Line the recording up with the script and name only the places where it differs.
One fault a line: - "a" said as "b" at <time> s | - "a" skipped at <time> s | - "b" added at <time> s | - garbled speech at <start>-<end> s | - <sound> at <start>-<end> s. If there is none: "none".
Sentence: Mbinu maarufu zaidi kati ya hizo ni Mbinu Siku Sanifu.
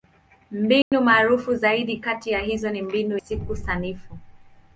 - dropout at 0.8-0.9 s